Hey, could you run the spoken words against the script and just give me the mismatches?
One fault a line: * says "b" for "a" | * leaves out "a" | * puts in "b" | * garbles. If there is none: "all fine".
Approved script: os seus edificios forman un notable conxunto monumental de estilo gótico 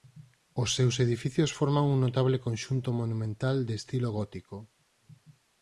all fine